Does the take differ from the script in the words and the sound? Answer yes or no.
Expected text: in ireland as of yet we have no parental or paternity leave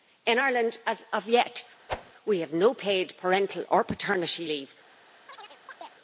yes